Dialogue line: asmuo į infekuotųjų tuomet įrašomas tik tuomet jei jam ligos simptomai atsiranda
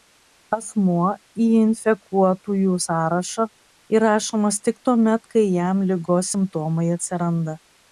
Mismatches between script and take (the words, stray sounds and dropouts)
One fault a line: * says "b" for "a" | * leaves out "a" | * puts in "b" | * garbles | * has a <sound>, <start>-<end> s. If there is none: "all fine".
* says "sąrašą" for "tuomet"
* says "kai" for "jei"